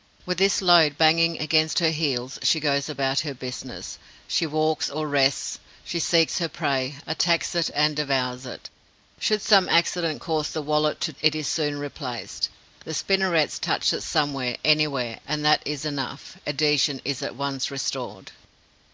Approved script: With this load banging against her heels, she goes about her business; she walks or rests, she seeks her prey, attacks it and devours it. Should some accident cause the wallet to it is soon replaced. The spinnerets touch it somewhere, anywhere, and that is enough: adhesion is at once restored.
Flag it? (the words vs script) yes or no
no